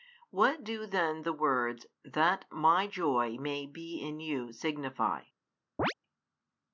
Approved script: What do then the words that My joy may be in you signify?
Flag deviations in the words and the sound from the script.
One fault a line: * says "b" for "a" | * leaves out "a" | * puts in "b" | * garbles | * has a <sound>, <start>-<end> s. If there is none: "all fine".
* has a chirp, 5.8-5.9 s